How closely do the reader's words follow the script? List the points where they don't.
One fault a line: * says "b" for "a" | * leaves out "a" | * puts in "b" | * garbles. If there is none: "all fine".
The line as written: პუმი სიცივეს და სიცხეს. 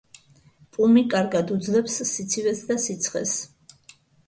* puts in "კარგად უძლებს"